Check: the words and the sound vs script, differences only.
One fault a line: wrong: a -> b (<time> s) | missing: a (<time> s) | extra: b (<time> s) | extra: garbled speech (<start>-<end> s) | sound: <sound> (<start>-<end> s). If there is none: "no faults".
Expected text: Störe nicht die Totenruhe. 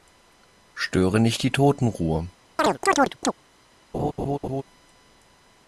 sound: chirp (2.6-3.3 s)
sound: laugh (3.9-4.6 s)